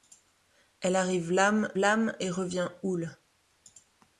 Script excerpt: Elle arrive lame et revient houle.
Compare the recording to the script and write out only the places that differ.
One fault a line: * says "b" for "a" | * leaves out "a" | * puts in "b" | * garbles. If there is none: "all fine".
* puts in "lame"